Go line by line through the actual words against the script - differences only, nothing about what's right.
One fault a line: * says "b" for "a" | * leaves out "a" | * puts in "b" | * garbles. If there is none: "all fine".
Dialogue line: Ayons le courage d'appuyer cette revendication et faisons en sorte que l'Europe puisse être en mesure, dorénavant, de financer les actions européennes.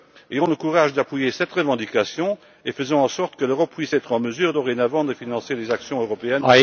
all fine